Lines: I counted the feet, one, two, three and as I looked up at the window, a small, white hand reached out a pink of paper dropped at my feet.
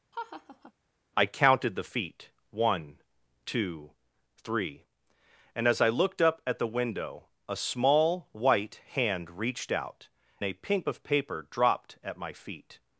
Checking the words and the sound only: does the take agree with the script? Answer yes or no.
no